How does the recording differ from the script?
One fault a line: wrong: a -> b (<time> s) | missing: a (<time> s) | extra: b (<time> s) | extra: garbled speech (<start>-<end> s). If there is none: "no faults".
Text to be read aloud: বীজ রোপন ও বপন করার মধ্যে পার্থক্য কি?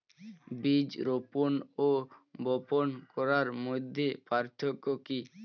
no faults